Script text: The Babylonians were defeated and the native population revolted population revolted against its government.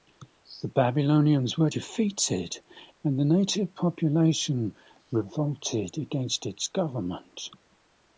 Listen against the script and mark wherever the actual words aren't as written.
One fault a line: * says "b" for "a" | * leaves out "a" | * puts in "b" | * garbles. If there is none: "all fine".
* leaves out "population revolted"